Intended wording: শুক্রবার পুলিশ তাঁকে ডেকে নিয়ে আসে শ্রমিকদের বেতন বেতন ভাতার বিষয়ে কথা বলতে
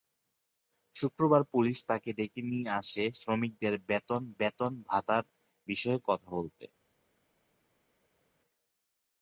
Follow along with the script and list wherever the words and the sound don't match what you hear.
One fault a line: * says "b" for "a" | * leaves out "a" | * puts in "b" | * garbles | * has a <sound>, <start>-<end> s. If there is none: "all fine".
all fine